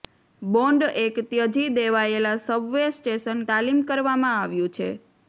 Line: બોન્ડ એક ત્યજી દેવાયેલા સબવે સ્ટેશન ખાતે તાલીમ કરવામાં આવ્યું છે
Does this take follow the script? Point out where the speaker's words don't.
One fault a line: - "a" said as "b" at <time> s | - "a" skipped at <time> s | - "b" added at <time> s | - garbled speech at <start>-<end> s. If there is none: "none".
- "ખાતે" skipped at 3.5 s